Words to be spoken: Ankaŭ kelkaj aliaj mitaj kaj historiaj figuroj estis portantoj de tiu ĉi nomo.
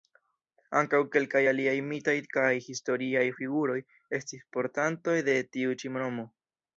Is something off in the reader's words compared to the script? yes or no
no